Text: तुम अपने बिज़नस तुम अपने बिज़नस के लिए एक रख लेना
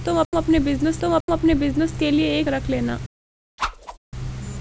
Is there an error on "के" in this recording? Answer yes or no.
no